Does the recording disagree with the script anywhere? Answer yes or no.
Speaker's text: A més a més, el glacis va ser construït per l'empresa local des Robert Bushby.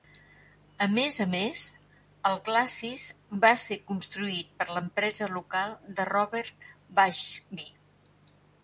yes